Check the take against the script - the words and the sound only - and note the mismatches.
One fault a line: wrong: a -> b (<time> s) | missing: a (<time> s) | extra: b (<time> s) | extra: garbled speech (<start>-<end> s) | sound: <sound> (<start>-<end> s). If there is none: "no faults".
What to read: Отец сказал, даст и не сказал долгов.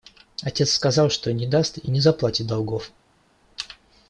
extra: что не (1.1 s)
wrong: сказал -> заплатит (2.0 s)